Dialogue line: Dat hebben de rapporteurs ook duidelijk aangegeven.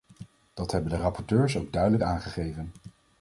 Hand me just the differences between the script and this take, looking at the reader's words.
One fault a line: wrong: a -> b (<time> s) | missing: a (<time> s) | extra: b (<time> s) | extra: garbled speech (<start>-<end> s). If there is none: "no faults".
no faults